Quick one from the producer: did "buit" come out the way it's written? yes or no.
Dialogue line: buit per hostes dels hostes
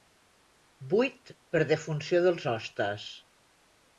yes